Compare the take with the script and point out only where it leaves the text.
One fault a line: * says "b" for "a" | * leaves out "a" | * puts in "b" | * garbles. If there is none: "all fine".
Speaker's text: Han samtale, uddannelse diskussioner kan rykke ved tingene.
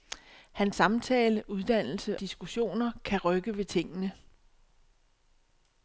all fine